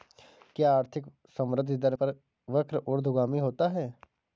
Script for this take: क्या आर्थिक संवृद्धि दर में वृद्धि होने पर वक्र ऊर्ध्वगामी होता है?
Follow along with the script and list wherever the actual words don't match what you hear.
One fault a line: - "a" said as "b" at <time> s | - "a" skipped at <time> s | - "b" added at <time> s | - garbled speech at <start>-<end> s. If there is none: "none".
- "में वृद्धि होने" skipped at 1.9 s